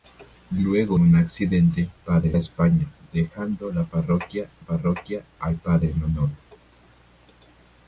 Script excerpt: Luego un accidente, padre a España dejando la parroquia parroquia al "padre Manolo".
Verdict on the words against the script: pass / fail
pass